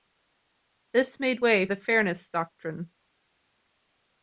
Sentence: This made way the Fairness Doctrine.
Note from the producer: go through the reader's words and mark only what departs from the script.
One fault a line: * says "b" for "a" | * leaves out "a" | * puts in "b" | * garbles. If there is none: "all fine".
all fine